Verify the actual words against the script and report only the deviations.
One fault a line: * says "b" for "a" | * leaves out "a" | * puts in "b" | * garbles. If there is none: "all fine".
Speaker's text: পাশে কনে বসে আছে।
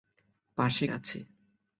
* leaves out "কনে বসে"